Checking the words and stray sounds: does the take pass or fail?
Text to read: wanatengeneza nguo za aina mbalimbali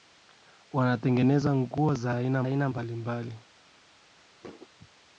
fail